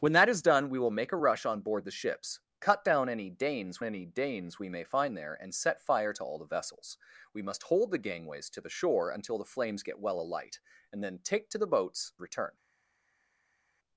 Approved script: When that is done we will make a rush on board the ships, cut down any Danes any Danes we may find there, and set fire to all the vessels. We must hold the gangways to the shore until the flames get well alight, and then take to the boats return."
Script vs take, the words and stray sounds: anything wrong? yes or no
no